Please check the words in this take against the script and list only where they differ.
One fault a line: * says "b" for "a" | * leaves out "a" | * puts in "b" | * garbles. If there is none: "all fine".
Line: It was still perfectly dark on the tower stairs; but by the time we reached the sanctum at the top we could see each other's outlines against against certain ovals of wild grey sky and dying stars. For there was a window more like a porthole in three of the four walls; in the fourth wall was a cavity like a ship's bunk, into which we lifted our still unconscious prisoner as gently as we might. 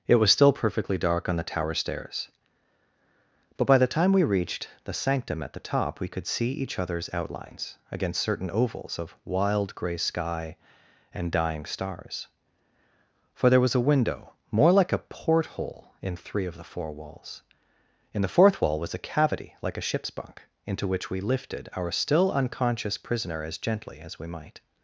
* leaves out "against"